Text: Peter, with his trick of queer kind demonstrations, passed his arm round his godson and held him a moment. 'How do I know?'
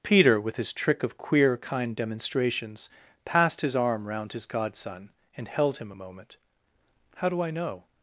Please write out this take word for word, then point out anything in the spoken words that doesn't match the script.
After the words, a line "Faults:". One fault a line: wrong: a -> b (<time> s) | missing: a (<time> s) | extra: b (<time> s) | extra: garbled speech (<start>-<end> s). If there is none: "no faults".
Peter, with his trick of queer kind demonstrations, passed his arm round his godson and held him a moment. 'How do I know?'
Faults:
no faults